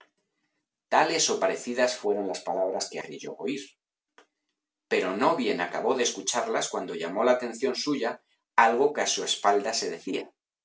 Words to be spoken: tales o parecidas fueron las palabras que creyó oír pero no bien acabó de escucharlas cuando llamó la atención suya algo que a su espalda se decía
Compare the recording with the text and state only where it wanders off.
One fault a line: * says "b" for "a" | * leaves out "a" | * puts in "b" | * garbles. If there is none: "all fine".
all fine